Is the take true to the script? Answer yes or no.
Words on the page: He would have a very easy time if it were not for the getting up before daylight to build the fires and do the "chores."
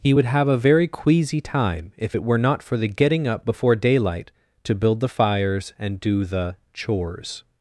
no